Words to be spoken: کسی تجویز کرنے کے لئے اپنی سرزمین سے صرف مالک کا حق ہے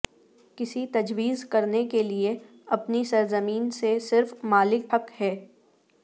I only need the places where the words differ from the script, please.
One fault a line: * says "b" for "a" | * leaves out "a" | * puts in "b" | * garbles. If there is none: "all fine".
* leaves out "کا"